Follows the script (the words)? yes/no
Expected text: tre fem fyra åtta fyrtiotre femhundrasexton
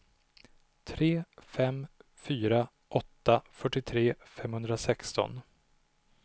yes